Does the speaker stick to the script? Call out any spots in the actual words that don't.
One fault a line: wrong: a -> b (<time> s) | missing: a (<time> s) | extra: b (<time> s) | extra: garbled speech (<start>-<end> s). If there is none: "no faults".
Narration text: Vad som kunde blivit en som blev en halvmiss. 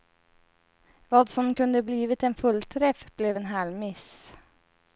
wrong: som -> fullträff (2.3 s)